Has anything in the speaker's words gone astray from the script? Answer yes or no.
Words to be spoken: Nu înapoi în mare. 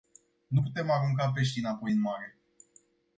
yes